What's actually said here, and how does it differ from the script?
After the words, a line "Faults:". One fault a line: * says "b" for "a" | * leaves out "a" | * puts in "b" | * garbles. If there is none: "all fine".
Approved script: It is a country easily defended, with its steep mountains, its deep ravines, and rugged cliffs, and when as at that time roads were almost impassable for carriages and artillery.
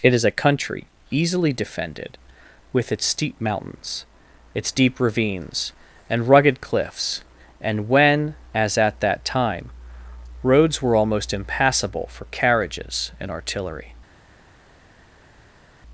It is a country easily defended, with its steep mountains, its deep ravines, and rugged cliffs, and when as at that time roads were almost impassable for carriages and artillery.
Faults:
all fine